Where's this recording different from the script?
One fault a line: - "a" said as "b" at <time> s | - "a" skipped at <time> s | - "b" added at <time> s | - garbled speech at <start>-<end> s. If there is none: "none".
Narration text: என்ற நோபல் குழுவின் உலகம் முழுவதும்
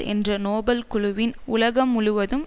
none